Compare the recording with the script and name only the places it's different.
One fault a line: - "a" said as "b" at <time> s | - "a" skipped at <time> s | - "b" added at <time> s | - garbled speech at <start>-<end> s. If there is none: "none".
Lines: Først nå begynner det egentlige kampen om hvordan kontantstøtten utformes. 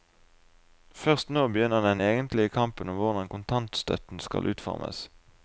- "det" said as "den" at 1.9 s
- "skal" added at 4.2 s